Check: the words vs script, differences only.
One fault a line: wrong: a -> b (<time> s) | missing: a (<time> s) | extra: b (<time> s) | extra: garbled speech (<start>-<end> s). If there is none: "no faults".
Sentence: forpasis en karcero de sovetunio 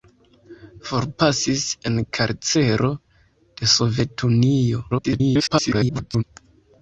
extra: garbled speech (4.9-6.2 s)